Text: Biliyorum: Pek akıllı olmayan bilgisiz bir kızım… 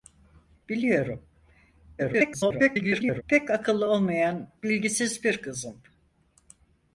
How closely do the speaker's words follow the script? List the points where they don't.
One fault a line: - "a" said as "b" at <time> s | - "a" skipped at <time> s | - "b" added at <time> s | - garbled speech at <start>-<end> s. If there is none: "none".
- garbled speech at 2.0-3.2 s